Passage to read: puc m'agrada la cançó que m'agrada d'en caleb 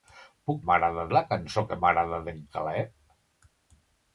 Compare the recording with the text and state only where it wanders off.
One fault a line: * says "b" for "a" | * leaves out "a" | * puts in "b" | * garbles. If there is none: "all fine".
all fine